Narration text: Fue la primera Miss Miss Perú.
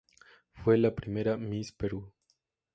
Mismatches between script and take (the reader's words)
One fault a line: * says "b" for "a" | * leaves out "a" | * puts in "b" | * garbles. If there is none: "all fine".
* leaves out "Miss"